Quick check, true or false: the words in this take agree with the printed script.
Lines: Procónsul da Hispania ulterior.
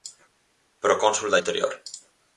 false